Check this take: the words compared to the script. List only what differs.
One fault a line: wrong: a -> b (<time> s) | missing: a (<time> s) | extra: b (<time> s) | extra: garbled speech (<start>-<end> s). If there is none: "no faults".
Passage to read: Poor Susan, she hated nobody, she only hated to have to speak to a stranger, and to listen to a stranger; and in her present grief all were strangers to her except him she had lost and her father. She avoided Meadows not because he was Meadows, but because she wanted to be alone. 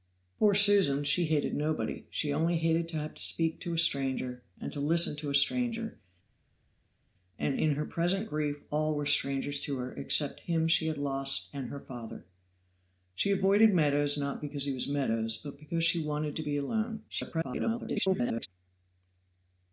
extra: garbled speech (17.1-18.5 s)